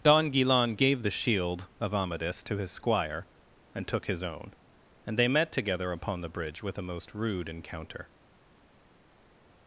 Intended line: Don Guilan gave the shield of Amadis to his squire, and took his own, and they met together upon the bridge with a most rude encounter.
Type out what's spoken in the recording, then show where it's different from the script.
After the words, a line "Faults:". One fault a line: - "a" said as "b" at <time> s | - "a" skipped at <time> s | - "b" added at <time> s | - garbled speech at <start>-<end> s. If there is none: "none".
Don Guilan gave the shield of Amadis to his squire, and took his own, and they met together upon the bridge with a most rude encounter.
Faults:
none